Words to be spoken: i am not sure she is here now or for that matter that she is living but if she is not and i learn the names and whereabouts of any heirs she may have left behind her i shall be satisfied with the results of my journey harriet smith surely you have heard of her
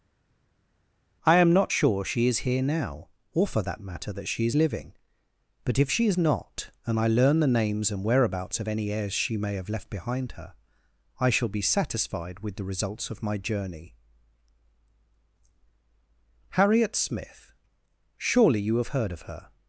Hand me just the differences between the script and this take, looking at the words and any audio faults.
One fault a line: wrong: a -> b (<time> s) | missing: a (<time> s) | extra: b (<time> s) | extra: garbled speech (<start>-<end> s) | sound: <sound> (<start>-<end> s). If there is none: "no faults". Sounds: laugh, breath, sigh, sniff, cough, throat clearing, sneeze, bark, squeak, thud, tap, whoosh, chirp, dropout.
no faults